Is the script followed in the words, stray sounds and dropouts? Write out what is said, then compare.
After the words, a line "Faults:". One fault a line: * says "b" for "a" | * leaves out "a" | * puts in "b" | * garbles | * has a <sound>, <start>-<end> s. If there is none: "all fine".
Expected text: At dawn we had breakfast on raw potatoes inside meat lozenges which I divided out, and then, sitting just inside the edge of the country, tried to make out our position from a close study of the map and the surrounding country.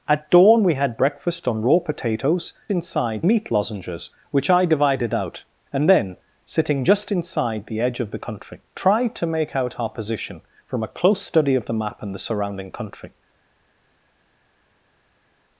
At dawn we had breakfast on raw potatoes inside meat lozenges which I divided out, and then, sitting just inside the edge of the country, tried to make out our position from a close study of the map and the surrounding country.
Faults:
all fine